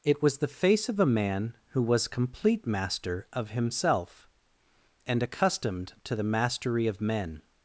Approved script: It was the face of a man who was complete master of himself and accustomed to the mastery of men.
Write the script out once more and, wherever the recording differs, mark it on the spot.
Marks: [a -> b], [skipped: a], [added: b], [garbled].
It was the face of a man who was complete master of himself and accustomed to the mastery of men.